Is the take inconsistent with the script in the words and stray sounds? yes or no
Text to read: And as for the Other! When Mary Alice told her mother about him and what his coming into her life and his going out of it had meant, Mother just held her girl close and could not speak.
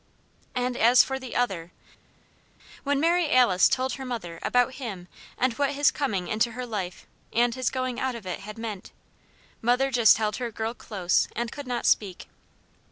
no